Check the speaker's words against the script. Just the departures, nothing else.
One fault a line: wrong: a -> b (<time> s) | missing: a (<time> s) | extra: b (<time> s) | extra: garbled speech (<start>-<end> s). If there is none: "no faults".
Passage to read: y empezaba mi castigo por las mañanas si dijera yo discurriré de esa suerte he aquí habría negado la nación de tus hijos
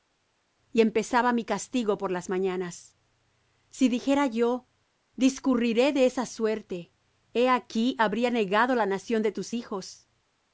no faults